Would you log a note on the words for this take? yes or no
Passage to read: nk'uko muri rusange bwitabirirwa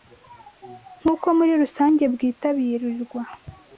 no